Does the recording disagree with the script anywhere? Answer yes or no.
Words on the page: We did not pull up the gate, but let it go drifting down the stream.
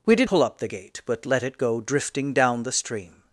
yes